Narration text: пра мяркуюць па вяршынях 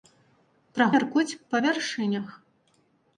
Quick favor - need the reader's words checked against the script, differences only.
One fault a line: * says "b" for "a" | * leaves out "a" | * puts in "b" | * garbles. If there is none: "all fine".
all fine